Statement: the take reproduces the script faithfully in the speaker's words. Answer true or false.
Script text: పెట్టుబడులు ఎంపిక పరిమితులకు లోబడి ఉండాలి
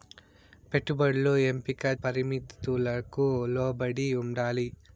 true